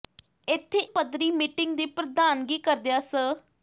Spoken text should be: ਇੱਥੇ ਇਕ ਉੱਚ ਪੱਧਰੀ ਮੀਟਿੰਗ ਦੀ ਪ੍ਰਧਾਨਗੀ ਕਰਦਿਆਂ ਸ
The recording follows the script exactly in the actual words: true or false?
false